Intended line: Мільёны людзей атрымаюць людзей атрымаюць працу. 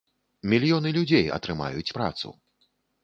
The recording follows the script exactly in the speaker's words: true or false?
false